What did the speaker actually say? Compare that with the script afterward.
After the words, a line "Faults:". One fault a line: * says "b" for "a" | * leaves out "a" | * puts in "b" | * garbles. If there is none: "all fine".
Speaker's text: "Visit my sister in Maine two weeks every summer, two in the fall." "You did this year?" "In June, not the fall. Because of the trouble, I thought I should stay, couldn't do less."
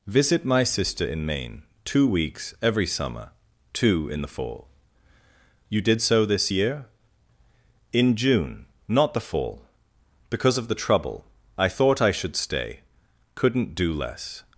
"Visit my sister in Maine two weeks every summer, two in the fall." "You did so this year?" "In June, not the fall. Because of the trouble, I thought I should stay, couldn't do less."
Faults:
* puts in "so"